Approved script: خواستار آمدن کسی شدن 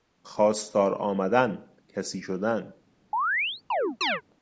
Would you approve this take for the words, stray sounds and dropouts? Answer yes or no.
no